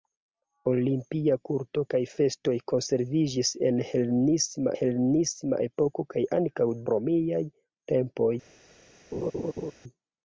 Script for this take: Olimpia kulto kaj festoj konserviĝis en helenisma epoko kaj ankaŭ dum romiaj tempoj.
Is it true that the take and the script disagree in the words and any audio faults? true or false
true